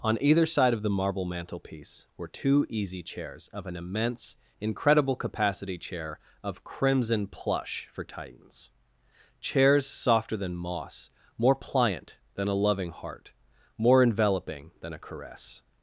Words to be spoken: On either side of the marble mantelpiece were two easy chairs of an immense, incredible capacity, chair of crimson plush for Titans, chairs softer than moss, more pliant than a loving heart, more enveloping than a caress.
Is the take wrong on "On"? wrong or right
right